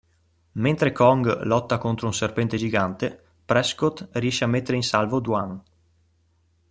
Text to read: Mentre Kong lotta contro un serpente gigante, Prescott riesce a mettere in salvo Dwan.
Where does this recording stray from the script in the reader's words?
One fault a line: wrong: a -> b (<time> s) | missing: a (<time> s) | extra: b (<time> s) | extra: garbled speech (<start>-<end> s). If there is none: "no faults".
no faults